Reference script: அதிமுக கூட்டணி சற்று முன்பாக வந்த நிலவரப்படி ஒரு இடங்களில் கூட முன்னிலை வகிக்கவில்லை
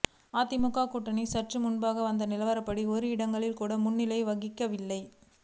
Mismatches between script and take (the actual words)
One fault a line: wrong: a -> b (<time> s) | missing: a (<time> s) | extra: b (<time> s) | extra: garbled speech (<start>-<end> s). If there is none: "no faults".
no faults